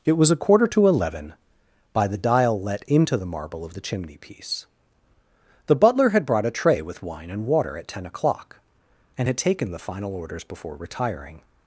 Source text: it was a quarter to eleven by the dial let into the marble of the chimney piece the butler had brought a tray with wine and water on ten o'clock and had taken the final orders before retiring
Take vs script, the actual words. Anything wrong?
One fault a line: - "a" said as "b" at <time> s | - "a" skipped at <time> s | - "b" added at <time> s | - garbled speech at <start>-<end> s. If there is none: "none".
- "on" said as "at" at 7.8 s